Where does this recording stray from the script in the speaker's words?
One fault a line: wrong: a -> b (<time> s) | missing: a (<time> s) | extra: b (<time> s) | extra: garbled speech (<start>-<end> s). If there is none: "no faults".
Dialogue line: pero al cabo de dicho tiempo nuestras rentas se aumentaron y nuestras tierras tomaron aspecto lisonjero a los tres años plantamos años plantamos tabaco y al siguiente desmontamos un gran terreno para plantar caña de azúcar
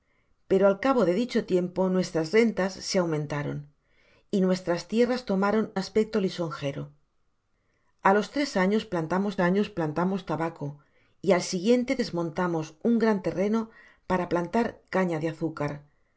no faults